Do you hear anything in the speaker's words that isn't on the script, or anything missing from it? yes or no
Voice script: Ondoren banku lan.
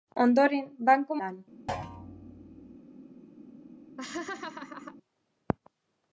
no